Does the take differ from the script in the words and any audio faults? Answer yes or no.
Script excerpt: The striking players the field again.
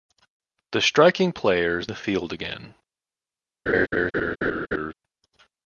yes